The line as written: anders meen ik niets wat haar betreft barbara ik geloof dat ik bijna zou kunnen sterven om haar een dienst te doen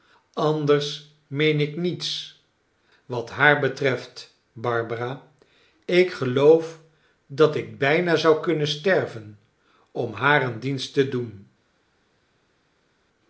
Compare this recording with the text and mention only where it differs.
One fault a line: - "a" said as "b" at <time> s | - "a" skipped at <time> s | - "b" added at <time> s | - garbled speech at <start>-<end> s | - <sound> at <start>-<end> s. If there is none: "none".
none